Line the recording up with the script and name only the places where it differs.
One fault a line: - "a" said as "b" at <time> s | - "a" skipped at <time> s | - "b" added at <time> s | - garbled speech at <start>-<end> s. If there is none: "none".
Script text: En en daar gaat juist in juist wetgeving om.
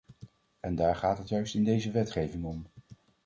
- "en" skipped at 0.8 s
- "het" added at 1.2 s
- "juist" said as "deze" at 1.6 s